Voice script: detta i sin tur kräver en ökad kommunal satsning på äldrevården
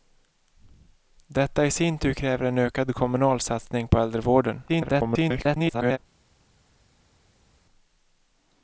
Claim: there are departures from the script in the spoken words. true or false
true